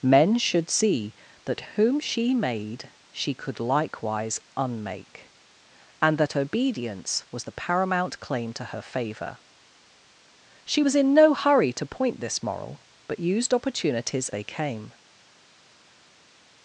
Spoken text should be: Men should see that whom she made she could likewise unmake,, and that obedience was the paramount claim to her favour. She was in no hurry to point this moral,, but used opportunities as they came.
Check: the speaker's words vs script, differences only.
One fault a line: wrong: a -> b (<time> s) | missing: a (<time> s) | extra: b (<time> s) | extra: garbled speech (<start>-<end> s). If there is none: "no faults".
missing: as (14.3 s)